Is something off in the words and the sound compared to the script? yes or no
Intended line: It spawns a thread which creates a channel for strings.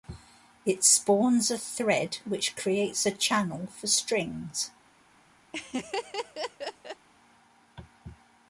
yes